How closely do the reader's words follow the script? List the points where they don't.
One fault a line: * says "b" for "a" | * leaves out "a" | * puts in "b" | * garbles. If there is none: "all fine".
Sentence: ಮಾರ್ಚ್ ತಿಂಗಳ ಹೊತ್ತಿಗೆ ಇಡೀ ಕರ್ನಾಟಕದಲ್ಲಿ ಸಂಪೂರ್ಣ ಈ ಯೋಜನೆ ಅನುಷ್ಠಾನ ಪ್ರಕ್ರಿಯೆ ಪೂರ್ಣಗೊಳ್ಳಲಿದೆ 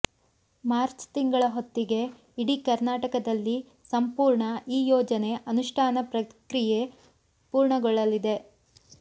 all fine